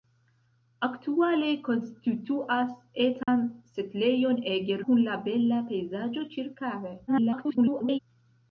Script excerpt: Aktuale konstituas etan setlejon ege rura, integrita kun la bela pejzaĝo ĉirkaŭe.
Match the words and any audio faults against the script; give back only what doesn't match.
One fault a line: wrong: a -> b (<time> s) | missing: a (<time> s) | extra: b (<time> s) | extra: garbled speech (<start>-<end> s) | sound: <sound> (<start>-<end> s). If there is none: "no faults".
sound: dropout (3.2-3.3 s)
missing: rura integrita (4.8 s)
extra: garbled speech (7.1-8.0 s)